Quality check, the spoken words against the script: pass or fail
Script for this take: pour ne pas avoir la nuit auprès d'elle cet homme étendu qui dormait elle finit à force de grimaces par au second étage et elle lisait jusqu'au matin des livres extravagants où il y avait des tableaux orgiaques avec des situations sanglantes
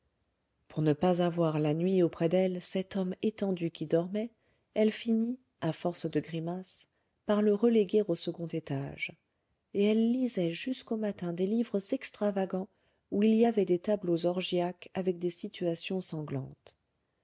fail